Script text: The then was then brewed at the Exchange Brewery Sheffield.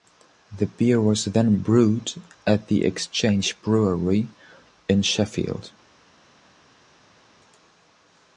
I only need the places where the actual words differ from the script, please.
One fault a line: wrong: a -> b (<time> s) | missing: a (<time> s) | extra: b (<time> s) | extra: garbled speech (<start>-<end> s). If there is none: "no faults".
wrong: then -> beer (0.7 s)
extra: in (4.9 s)